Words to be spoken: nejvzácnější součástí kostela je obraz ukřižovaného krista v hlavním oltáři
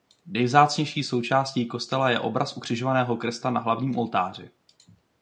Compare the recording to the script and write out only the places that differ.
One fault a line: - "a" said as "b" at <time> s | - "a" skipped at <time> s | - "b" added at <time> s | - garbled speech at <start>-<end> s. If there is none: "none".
- "v" said as "na" at 3.5 s